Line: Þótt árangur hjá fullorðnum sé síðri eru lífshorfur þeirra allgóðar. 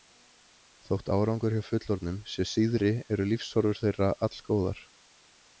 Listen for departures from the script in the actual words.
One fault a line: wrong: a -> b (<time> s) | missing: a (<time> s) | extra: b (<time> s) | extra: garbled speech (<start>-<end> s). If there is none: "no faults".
no faults